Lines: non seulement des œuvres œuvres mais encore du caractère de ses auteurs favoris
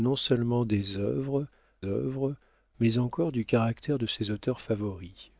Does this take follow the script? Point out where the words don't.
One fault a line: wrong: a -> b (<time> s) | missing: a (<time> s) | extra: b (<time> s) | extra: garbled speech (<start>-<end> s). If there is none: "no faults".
no faults